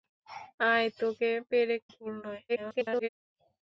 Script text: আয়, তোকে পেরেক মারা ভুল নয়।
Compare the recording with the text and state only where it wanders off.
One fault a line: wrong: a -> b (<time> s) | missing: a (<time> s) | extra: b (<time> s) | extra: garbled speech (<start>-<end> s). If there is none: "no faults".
missing: মারা (1.8 s)
extra: garbled speech (2.5-3.1 s)